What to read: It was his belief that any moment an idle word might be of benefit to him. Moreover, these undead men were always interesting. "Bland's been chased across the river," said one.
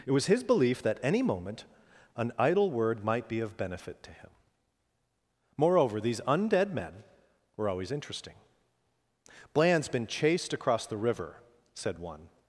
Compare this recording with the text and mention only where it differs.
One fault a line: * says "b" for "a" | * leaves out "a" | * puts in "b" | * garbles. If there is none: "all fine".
all fine